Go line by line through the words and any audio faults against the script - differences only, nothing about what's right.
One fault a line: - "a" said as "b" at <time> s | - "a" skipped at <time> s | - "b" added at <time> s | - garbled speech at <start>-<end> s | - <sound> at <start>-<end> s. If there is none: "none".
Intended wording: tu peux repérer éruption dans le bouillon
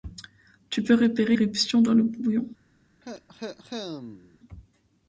- cough at 3.0-4.4 s